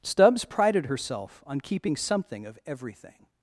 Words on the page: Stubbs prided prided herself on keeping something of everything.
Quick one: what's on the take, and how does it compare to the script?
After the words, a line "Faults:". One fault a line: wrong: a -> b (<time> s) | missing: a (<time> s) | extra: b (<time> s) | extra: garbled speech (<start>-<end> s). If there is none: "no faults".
Stubbs prided herself on keeping something of everything.
Faults:
missing: prided (0.9 s)